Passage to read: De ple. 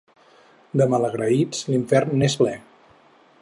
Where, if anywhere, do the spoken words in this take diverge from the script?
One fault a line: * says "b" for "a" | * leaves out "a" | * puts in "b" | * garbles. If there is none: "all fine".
* puts in "malagraïts l'infern n'és"